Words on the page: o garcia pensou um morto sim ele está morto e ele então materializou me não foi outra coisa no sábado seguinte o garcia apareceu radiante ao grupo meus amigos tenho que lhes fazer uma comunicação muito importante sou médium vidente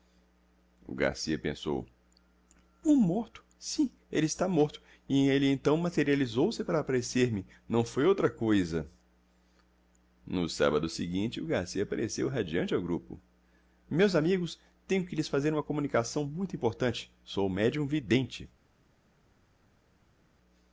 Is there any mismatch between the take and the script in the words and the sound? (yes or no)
yes